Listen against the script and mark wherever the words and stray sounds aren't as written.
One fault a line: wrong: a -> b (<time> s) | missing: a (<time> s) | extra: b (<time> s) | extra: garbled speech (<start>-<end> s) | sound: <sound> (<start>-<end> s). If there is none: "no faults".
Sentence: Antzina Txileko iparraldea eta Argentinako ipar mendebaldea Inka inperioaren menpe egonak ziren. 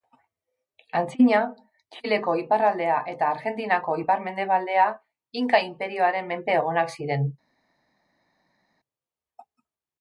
no faults